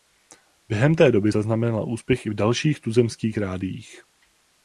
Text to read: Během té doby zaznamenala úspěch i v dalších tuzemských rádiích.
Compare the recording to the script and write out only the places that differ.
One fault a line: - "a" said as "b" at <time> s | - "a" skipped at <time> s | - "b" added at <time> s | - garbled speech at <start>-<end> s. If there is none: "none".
none